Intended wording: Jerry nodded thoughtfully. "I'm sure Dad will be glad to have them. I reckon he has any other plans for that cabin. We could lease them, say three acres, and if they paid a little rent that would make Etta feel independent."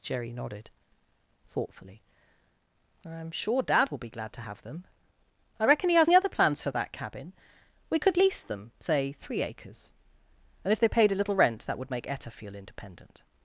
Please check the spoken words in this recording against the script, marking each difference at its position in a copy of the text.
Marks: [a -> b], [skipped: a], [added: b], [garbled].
Jerry nodded thoughtfully. "I'm sure Dad will be glad to have them. I reckon he has any other plans for that cabin. We could lease them, say three acres, and if they paid a little rent that would make Etta feel independent."